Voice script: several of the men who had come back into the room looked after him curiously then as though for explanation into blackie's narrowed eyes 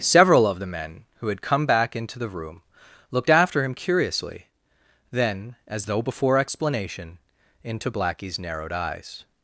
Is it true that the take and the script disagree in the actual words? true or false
true